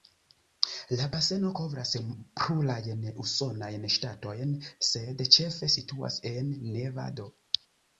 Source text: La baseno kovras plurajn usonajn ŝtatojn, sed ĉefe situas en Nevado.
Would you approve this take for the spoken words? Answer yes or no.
yes